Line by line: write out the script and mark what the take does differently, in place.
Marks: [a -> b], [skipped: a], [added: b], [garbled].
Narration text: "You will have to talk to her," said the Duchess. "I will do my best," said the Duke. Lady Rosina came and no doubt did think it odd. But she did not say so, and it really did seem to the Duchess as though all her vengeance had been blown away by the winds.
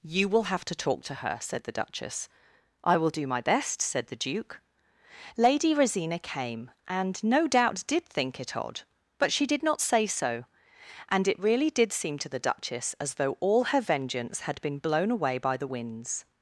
"You will have to talk to her," said the Duchess. "I will do my best," said the Duke. Lady Rosina came and no doubt did think it odd. But she did not say so, and it really did seem to the Duchess as though all her vengeance had been blown away by the winds.